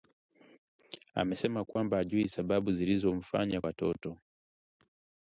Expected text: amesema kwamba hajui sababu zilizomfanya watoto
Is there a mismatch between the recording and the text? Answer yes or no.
no